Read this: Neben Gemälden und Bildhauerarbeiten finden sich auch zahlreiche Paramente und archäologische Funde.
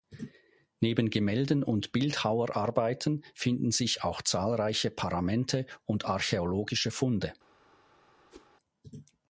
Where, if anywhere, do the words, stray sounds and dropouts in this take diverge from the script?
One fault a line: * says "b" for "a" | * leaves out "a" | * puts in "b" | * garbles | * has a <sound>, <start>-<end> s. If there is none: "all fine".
* has a whoosh, 8.3-8.5 s